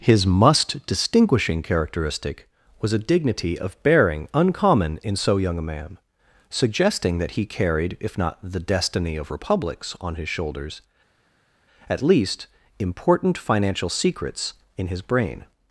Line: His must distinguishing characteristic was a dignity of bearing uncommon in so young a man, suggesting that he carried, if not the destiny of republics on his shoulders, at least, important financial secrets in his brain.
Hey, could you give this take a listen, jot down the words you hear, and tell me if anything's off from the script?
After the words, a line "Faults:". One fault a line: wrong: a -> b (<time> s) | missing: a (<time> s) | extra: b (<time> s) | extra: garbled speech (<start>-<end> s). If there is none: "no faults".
His must distinguishing characteristic was a dignity of bearing uncommon in so young a man, suggesting that he carried, if not the destiny of republics on his shoulders, at least, important financial secrets in his brain.
Faults:
no faults